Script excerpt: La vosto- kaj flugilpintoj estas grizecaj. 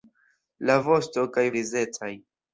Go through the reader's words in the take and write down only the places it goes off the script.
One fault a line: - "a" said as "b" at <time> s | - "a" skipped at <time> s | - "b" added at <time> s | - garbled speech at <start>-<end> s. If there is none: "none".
- "flugilpintoj estas" skipped at 1.4 s